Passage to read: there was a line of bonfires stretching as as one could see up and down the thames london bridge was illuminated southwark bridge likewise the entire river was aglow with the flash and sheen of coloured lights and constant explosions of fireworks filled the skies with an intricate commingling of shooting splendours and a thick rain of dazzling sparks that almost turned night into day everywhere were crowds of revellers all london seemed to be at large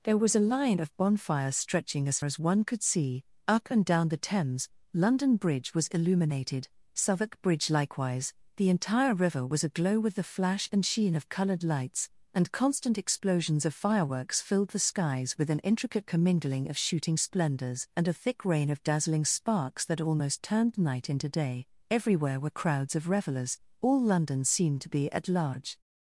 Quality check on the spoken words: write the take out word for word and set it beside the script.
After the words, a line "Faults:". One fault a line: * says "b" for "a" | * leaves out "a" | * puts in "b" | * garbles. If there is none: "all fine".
there was a line of bonfires stretching as as one could see up and down the thames london bridge was illuminated southwark bridge likewise the entire river was aglow with the flash and sheen of coloured lights and constant explosions of fireworks filled the skies with an intricate commingling of shooting splendours and a thick rain of dazzling sparks that almost turned night into day everywhere were crowds of revellers all london seemed to be at large
Faults:
all fine